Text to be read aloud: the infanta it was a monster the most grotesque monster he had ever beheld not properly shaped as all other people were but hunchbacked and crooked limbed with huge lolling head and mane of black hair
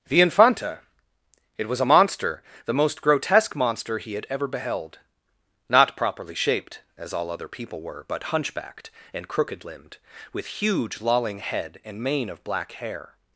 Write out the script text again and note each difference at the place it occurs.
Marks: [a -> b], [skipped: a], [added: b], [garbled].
the infanta it was a monster the most grotesque monster he had ever beheld not properly shaped as all other people were but hunchbacked and crooked limbed with huge lolling head and mane of black hair